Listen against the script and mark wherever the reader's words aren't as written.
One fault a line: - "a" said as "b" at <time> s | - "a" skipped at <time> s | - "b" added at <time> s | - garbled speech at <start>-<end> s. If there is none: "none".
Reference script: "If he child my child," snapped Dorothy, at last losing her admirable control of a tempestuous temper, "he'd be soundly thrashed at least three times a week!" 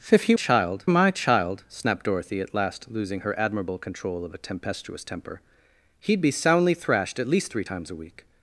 none